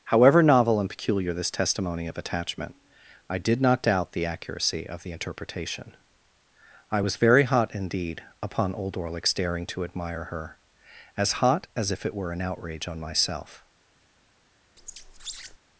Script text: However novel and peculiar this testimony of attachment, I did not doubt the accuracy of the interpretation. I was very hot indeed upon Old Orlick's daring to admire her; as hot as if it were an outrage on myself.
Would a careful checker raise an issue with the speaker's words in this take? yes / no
no